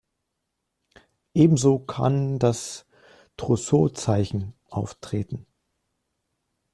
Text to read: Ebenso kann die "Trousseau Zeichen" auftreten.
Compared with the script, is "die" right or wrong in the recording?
wrong